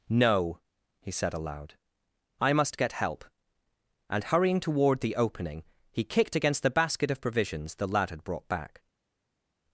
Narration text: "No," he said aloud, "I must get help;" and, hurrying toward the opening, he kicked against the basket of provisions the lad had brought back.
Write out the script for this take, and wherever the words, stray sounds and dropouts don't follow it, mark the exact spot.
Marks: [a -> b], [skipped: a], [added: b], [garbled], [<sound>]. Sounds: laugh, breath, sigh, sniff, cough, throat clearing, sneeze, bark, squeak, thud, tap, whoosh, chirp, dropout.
"No," he said aloud, "I must get help;" and, hurrying toward the opening, he kicked against the basket of provisions the lad had brought back.